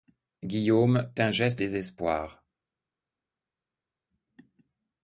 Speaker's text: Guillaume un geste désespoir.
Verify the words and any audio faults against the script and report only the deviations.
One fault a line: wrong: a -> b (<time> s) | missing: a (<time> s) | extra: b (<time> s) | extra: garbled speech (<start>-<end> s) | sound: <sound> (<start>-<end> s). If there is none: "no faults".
no faults